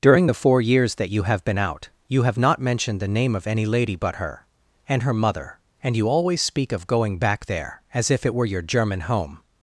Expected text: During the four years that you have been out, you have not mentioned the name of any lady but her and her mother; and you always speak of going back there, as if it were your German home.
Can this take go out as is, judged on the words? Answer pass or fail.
pass